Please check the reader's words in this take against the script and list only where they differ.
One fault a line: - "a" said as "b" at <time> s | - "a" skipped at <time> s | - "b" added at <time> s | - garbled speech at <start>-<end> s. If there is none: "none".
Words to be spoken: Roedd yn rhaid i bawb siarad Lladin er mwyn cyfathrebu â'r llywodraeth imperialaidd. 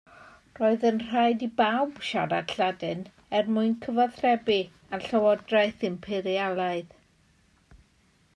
none